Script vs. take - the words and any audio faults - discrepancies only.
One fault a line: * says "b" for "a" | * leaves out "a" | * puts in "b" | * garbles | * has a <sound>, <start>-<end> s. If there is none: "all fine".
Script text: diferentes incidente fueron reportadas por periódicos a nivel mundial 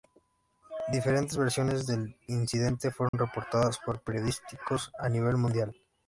* puts in "versiones del"
* has a dropout, 3.1-3.1 s